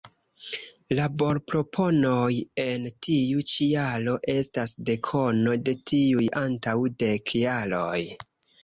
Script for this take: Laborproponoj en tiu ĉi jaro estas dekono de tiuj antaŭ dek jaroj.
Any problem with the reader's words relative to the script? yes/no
no